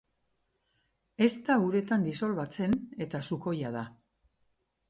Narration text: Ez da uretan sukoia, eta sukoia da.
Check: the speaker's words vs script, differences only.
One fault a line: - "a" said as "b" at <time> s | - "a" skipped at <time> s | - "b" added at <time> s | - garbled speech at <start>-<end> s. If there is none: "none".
- "sukoia" said as "disolbatzen" at 2.1 s